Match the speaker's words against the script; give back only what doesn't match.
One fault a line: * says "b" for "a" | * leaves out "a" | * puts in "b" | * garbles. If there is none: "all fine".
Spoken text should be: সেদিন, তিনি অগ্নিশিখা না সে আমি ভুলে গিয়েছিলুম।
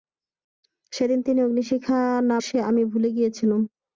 all fine